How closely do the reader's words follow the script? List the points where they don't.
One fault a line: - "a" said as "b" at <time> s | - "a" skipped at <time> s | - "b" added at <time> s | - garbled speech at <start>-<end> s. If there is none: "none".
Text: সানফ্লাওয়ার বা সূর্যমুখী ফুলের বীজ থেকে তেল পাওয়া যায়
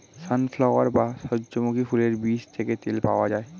none